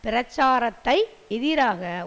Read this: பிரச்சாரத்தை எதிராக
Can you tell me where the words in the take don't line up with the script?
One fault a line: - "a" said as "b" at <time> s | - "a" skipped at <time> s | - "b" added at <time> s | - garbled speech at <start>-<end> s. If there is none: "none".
none